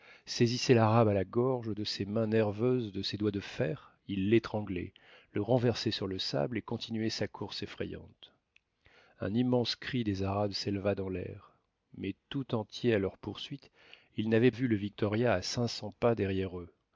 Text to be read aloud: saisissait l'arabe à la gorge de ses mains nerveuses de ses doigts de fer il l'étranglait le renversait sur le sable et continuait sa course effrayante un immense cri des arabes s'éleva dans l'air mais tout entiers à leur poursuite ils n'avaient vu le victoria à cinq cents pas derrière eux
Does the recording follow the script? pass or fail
pass